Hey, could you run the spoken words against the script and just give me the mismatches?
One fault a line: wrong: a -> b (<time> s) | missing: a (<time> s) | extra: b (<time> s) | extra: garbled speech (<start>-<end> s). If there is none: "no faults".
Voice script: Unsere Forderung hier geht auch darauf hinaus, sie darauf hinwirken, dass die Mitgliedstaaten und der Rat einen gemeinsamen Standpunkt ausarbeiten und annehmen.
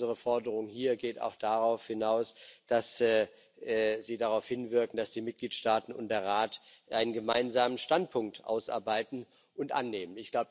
extra: dass (2.6 s)